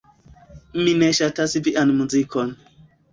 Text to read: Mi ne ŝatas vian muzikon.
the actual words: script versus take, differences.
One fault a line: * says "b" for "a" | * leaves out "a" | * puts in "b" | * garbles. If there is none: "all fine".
all fine